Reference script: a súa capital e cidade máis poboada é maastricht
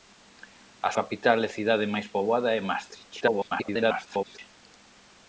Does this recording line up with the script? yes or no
no